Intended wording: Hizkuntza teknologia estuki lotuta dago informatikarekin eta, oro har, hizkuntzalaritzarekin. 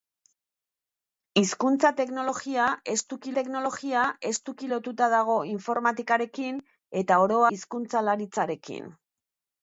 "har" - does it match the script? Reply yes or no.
no